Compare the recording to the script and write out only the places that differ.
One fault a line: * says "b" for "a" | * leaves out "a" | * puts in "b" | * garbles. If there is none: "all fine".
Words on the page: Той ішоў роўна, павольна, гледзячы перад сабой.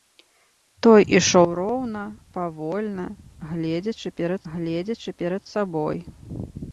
* puts in "гледзячы перад"